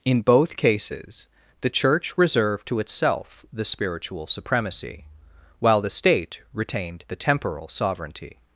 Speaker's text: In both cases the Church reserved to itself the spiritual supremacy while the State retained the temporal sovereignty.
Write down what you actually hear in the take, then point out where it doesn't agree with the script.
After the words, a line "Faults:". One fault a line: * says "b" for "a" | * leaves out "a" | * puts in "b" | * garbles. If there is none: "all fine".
In both cases the Church reserved to itself the spiritual supremacy while the State retained the temporal sovereignty.
Faults:
all fine